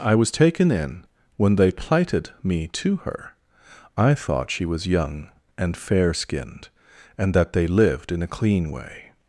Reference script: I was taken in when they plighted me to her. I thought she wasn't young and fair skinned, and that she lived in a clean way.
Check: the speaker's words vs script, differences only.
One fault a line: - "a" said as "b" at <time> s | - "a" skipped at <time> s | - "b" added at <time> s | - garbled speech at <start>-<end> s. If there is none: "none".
- "wasn't" said as "was" at 4.6 s
- "she" said as "they" at 7.5 s